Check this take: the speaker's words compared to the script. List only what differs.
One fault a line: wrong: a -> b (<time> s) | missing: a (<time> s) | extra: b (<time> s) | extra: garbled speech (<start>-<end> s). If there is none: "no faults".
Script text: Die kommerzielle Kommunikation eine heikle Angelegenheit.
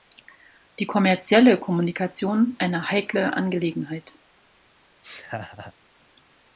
no faults